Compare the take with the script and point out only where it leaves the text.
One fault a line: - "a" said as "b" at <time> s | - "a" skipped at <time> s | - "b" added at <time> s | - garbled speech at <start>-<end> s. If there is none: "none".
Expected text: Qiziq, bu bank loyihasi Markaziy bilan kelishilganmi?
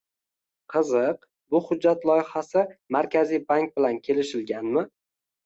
- "bank" said as "hujjat" at 1.6 s
- "bank" added at 3.5 s